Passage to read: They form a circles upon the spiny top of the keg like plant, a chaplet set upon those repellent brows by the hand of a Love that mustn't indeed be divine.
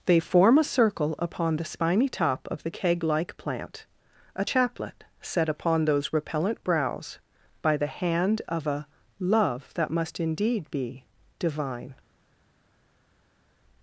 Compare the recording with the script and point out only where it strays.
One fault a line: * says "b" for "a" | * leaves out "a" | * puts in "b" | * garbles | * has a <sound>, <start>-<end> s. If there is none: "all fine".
* says "circle" for "circles"
* says "must" for "mustn't"